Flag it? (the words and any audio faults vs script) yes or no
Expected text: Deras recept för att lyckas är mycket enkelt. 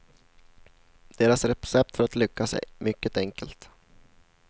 no